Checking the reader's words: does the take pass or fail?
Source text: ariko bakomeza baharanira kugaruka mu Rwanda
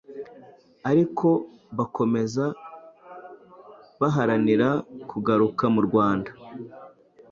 pass